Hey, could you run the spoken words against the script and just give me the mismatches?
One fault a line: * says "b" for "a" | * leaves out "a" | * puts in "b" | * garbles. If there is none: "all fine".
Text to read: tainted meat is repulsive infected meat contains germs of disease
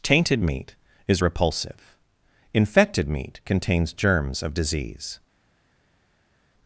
all fine